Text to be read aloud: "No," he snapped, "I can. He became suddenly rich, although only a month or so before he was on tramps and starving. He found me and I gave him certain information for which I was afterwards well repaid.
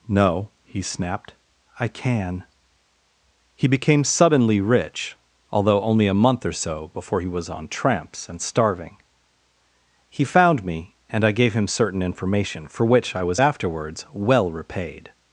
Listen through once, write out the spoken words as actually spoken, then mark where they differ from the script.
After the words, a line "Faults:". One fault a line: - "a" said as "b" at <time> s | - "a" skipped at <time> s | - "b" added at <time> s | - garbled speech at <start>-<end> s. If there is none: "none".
"No," he snapped, "I can. He became suddenly rich, although only a month or so before he was on tramps and starving. He found me and I gave him certain information for which I was afterwards well repaid.
Faults:
none